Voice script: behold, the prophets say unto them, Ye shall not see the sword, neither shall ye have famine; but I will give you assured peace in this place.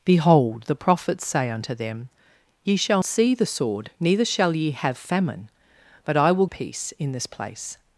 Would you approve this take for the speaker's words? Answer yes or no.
no